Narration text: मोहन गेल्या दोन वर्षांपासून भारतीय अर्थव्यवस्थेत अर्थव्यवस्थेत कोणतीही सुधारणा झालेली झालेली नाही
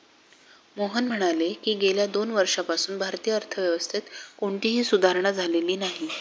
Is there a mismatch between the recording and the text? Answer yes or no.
yes